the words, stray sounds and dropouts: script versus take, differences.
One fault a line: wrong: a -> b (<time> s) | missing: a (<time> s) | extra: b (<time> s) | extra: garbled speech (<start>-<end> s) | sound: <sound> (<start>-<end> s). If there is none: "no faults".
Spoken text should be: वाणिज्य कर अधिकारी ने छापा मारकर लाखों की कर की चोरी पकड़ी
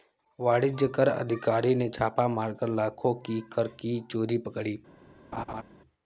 sound: laugh (5.3-5.6 s)